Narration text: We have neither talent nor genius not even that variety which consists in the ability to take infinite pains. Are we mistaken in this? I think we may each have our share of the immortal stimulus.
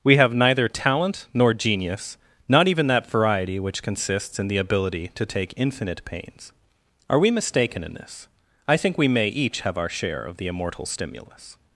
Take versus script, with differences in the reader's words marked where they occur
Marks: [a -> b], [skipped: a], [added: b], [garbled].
We have neither talent nor genius not even that variety which consists in the ability to take infinite pains. Are we mistaken in this? I think we may each have our share of the immortal stimulus.